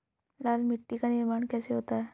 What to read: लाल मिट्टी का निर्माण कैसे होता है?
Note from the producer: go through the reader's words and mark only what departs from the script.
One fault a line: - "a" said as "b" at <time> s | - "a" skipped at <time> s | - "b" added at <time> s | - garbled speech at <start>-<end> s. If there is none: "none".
none